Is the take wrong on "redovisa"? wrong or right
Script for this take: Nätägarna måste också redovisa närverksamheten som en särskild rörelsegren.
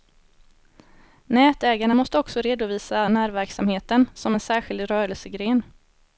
right